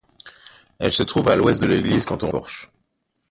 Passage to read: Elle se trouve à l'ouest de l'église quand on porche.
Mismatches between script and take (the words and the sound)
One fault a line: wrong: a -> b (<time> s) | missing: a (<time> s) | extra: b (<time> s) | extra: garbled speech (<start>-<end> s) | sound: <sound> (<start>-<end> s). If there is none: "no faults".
no faults